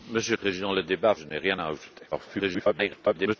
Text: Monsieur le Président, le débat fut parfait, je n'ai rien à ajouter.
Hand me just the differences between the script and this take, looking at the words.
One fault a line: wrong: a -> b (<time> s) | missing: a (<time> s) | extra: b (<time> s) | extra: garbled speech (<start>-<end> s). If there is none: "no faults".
missing: le (0.3 s)
missing: fut parfait (1.1 s)
extra: garbled speech (2.1-3.4 s)